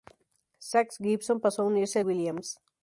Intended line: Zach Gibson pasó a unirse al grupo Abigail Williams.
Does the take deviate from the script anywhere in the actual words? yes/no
yes